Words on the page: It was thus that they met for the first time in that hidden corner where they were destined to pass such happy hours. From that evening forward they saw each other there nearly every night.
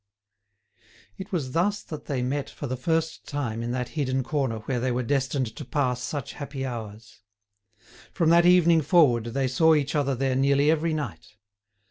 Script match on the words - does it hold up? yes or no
yes